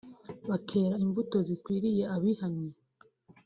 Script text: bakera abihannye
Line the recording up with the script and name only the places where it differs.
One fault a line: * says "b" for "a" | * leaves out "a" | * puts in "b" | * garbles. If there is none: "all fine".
* puts in "imbuto zikwiriye"